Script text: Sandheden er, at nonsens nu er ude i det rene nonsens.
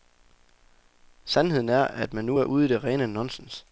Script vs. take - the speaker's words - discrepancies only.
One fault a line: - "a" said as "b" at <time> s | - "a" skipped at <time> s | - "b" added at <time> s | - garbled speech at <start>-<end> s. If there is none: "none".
- "nonsens" said as "man" at 2.1 s